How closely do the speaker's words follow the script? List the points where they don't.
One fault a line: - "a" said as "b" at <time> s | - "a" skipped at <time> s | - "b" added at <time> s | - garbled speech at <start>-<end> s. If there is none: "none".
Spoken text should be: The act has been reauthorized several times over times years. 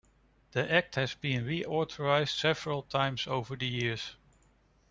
- "times" said as "the" at 3.6 s